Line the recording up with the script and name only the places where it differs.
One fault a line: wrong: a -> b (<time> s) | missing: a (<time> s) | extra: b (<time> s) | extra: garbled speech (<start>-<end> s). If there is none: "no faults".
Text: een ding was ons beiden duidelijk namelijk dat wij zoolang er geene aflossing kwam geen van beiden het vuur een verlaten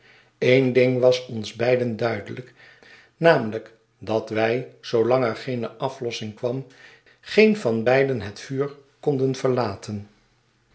wrong: een -> konden (9.0 s)